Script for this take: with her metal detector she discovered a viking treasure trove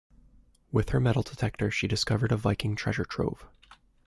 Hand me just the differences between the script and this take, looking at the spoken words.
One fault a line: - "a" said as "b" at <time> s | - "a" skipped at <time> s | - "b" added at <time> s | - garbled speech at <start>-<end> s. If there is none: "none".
none